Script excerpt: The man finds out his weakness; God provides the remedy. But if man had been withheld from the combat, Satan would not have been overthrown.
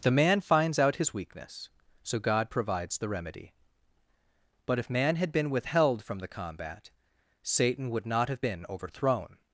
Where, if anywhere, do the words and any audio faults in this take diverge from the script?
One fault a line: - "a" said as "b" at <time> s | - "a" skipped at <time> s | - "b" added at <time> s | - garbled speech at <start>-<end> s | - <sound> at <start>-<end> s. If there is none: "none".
- "so" added at 2.0 s